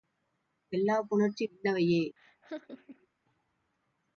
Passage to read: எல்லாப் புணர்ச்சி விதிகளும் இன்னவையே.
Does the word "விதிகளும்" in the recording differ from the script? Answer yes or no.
yes